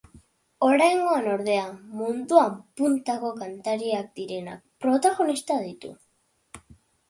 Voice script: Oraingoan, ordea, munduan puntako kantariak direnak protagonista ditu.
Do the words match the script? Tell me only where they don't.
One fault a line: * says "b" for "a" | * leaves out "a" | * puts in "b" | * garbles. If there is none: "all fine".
all fine